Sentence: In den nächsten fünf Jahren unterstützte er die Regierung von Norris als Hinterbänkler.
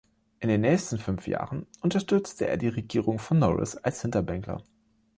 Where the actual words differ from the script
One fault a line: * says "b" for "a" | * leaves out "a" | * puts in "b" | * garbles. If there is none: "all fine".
all fine